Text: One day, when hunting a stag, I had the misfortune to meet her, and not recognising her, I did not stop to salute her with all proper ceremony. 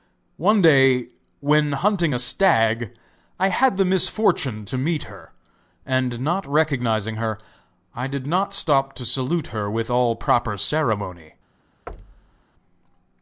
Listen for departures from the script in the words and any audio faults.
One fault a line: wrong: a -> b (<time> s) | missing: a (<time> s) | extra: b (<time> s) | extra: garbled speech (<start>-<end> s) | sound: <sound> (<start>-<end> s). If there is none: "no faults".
sound: thud (11.9-12.4 s)